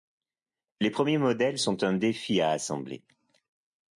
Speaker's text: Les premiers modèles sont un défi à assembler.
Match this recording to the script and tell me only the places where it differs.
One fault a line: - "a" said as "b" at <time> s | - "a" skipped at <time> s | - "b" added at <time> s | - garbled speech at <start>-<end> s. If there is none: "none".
none